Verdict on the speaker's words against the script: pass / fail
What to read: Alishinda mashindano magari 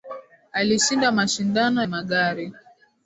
pass